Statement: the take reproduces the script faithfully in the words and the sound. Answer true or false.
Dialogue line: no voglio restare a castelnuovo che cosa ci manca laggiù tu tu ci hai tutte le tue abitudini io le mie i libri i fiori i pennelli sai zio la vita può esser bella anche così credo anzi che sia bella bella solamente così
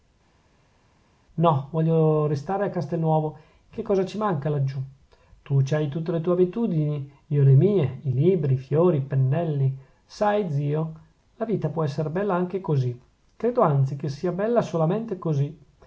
false